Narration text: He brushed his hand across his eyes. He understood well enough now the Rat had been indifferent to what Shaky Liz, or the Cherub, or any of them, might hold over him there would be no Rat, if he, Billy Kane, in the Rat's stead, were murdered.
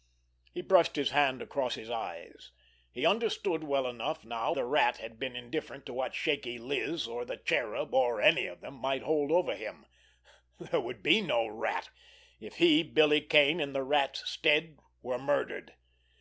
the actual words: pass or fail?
pass